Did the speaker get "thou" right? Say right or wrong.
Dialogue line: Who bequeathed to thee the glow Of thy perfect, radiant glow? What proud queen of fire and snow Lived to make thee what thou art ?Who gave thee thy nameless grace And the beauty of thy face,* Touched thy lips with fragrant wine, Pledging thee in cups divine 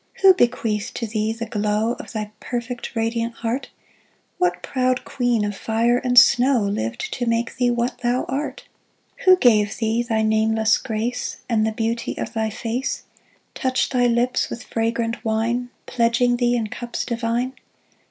right